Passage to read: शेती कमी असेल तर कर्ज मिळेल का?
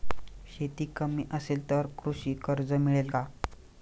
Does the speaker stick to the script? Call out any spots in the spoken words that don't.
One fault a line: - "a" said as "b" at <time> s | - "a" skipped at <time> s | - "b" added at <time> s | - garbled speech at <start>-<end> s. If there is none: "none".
- "कृषी" added at 2.0 s